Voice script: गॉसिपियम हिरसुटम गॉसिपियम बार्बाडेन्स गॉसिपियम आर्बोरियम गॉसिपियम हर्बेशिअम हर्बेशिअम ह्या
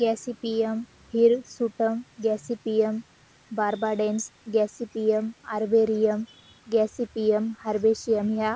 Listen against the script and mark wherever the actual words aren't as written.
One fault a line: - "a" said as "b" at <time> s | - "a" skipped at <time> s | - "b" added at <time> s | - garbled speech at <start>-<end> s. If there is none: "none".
- "हर्बेशिअम" skipped at 8.3 s